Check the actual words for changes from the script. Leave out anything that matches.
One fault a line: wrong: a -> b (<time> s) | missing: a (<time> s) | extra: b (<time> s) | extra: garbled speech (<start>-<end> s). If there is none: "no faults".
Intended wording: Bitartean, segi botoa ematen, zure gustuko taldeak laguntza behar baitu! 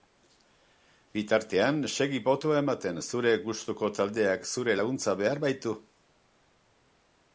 extra: zure (4.5 s)